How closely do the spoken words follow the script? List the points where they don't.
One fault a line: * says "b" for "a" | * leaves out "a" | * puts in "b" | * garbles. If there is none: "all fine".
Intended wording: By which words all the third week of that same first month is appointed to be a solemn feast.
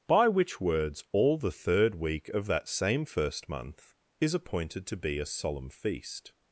all fine